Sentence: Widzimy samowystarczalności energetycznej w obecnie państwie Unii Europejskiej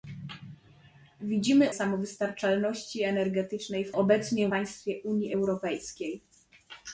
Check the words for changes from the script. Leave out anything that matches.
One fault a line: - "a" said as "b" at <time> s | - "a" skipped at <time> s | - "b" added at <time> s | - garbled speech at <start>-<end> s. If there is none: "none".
none